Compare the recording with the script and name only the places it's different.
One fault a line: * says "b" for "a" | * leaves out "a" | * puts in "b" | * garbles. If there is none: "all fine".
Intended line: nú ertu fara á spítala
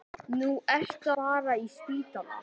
all fine